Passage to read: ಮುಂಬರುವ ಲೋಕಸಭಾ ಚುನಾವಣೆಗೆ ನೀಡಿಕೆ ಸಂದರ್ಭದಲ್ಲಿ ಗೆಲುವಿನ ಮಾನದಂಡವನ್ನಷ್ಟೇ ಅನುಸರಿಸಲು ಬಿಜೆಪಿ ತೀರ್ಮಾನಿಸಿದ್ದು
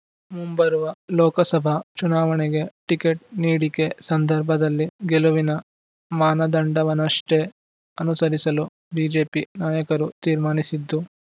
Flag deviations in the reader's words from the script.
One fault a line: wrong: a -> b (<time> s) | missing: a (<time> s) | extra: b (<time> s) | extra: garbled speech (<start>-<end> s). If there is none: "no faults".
extra: ಟಿಕೆಟ್ (2.9 s)
extra: ನಾಯಕರು (9.6 s)